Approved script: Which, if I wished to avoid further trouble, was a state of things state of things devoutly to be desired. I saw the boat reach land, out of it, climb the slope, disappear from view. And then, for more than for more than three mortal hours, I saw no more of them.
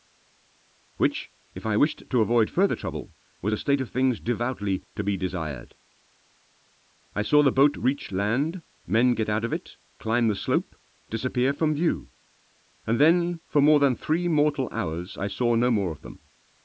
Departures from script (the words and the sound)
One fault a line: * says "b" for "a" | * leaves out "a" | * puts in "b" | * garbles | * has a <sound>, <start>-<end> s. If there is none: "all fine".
* leaves out "state of things"
* puts in "men get"
* leaves out "for more than"